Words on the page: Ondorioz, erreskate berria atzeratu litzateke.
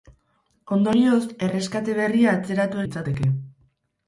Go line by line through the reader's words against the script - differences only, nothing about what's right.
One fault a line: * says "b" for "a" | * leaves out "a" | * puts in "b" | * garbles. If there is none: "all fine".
all fine